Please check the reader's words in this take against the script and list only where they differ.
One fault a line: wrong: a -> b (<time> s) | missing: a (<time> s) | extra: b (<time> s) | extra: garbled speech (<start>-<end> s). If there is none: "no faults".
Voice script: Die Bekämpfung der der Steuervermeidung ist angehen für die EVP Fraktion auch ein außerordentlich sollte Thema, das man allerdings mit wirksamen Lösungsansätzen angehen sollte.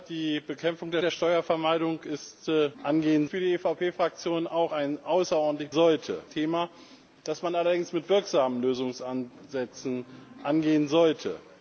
no faults